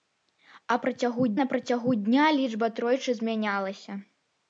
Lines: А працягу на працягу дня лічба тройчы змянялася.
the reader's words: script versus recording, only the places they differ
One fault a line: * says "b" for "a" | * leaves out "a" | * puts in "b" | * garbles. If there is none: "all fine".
all fine